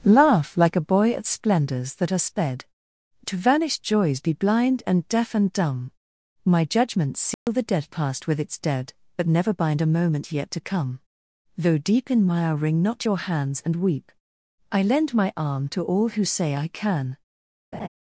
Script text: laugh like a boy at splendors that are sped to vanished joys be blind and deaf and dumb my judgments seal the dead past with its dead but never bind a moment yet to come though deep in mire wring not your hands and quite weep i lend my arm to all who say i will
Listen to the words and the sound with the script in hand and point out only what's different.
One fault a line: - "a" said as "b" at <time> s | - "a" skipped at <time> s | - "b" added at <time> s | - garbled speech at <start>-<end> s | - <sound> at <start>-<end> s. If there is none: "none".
- dropout at 7.3-7.5 s
- "quite" skipped at 13.8 s
- "will" said as "can" at 16.7 s
- laugh at 17.7-17.9 s